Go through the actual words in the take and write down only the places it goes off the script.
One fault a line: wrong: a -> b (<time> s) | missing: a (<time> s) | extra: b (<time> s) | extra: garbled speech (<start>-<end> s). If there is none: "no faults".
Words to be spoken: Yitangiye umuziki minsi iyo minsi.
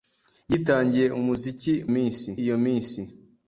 no faults